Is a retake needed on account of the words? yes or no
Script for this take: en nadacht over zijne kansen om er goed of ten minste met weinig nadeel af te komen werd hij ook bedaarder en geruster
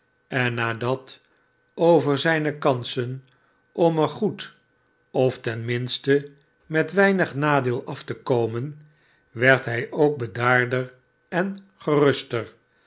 no